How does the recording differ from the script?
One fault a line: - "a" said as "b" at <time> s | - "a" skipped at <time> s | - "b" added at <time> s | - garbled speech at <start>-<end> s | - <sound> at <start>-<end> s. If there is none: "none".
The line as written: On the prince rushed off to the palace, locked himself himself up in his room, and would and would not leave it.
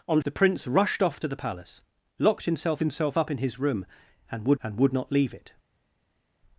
none